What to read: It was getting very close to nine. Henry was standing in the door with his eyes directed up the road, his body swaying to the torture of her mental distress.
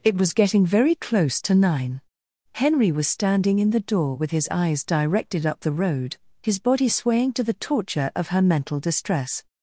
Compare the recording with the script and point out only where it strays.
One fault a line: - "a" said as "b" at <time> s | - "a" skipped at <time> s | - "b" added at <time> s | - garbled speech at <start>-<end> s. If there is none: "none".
none